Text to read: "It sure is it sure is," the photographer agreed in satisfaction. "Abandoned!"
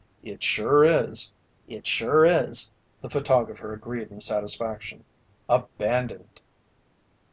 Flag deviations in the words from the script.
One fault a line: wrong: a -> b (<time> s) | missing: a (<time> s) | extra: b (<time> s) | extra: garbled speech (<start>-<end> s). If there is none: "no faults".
no faults